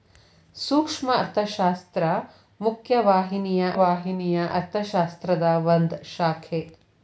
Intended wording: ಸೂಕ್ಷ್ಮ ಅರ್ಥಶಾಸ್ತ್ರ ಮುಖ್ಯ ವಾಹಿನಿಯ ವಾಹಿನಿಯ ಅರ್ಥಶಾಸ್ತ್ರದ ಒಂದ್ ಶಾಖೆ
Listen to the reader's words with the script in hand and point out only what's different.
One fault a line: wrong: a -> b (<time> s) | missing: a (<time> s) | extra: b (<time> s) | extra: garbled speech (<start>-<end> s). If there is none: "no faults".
no faults